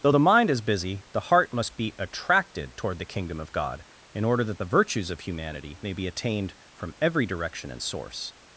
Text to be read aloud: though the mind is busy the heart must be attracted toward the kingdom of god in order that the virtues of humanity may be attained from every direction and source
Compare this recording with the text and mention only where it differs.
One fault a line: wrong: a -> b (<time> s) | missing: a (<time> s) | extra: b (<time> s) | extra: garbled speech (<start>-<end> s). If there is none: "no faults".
no faults